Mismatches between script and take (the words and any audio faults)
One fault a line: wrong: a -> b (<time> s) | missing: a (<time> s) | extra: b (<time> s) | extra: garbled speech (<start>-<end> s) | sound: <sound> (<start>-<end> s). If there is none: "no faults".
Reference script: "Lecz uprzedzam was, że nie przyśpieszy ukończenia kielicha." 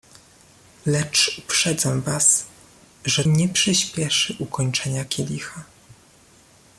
no faults